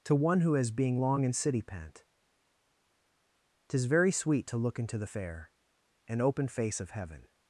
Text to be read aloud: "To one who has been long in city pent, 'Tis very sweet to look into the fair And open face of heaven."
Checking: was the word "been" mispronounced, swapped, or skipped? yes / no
yes